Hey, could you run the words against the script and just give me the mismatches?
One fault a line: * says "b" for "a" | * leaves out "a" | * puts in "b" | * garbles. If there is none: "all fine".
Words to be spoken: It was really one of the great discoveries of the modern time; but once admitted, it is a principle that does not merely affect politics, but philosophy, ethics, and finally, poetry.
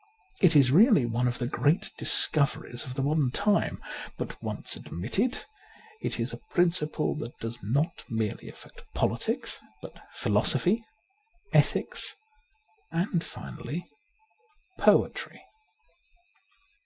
* says "is" for "was"